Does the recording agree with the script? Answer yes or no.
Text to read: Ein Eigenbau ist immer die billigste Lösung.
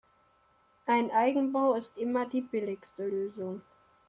yes